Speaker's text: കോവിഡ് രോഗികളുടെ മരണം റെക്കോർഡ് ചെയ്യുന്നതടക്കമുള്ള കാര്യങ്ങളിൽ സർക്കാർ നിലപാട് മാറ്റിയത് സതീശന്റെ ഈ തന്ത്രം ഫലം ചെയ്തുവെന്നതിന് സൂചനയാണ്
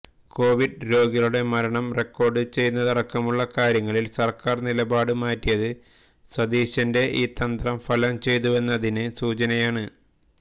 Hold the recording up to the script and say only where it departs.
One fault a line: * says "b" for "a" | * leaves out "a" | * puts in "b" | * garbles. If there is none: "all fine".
all fine